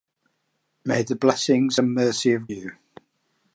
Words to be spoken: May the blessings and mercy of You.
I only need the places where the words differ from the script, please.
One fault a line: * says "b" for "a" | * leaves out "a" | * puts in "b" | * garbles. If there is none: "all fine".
all fine